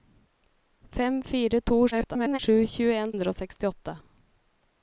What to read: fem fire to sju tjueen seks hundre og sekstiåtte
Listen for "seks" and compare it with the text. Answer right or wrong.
wrong